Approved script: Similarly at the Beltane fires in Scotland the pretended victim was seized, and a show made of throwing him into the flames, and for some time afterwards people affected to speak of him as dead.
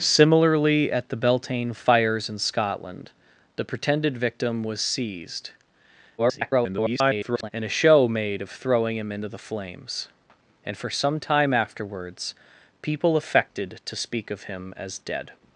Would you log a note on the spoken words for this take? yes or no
yes